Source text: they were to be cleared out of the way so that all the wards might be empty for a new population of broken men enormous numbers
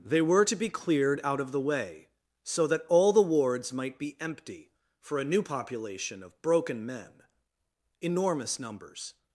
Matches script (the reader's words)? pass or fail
pass